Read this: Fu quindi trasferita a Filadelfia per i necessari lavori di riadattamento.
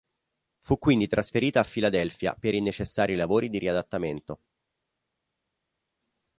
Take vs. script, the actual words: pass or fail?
pass